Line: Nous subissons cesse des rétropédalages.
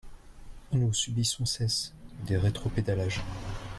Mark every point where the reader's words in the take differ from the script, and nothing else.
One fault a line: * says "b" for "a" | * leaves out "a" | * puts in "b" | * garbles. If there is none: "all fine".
all fine